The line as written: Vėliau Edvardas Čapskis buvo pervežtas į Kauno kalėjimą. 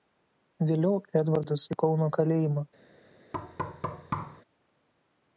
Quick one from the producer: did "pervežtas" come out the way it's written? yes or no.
no